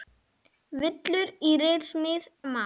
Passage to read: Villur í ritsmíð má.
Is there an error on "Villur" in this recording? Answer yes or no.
no